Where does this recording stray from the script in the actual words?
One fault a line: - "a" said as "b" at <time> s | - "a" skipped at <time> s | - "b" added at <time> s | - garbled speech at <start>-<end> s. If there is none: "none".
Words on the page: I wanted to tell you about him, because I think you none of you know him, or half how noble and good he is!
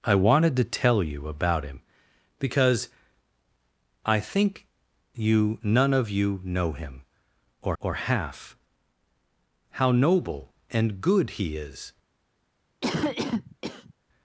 - "or" added at 7.8 s